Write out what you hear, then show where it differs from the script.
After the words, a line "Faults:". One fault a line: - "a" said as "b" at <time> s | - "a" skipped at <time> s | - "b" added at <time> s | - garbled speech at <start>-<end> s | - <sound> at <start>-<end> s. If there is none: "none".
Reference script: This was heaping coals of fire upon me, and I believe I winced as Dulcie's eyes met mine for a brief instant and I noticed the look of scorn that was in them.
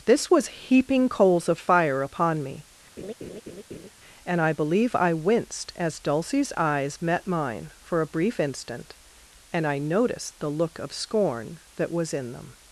This was heaping coals of fire upon me, and I believe I winced as Dulcie's eyes met mine for a brief instant and I noticed the look of scorn that was in them.
Faults:
- laugh at 3.0-3.9 s